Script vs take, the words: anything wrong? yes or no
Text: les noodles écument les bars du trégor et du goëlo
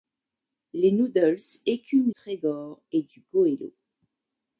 yes